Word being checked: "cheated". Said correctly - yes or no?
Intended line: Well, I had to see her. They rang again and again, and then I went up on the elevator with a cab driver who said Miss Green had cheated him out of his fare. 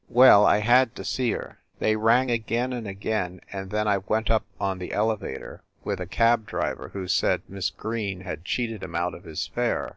yes